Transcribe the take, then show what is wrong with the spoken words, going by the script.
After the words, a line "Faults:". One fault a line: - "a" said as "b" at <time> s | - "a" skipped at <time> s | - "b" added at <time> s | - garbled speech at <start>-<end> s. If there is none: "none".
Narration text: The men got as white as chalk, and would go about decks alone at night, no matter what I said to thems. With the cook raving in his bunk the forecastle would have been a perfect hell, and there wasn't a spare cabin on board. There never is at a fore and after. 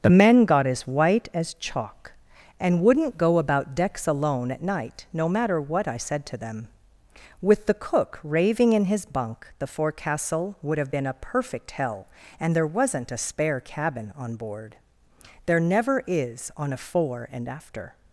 The men got as white as chalk, and wouldn't go about decks alone at night, no matter what I said to them. With the cook raving in his bunk the forecastle would have been a perfect hell, and there wasn't a spare cabin on board. There never is on a fore and after.
Faults:
- "would" said as "wouldn't" at 2.8 s
- "thems" said as "them" at 6.4 s
- "at" said as "on" at 16.6 s